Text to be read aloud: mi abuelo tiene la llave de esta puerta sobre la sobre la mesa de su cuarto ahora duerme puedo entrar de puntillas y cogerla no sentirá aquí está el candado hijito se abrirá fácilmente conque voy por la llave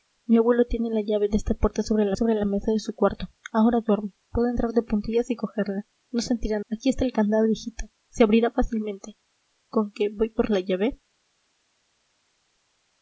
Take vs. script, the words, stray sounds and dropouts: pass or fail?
pass